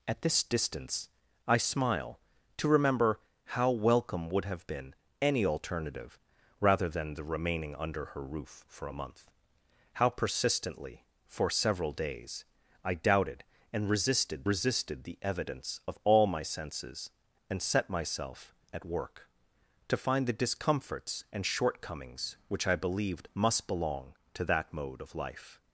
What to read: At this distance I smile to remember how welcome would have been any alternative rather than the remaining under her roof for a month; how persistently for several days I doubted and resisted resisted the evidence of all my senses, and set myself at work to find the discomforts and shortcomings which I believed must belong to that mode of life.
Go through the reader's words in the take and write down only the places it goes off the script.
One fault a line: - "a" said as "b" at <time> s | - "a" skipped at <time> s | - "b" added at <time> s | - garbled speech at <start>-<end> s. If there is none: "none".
none